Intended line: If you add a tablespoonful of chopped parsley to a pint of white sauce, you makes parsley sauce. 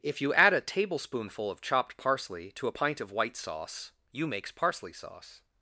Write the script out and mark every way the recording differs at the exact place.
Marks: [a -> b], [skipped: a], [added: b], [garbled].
If you add a tablespoonful of chopped parsley to a pint of white sauce, you makes parsley sauce.